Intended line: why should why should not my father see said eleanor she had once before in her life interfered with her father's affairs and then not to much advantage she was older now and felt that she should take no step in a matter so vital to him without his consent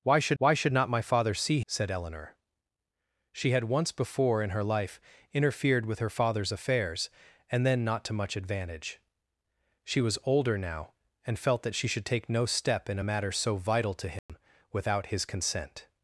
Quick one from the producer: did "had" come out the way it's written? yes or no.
yes